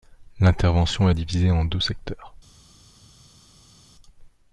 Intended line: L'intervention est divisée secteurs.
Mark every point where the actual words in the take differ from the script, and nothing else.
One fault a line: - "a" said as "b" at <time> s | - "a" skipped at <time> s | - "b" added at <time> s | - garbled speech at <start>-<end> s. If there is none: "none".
- "en deux" added at 1.5 s